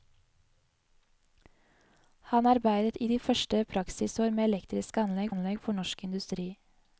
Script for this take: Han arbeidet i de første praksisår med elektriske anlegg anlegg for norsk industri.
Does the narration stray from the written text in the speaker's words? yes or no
no